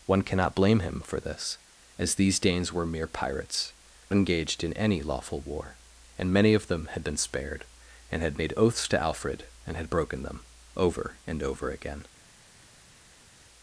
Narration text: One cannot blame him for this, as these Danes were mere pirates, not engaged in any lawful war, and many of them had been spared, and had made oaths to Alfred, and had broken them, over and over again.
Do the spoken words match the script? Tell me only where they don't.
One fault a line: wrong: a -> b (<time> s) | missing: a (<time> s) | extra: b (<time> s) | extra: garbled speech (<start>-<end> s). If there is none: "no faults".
missing: not (3.7 s)